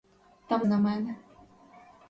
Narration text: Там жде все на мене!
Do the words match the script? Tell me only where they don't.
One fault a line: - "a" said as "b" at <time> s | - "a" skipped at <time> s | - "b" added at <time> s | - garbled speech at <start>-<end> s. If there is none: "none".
- "жде все" skipped at 0.7 s